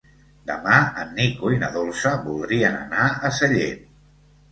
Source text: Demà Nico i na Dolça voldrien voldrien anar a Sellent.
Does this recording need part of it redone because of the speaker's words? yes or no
yes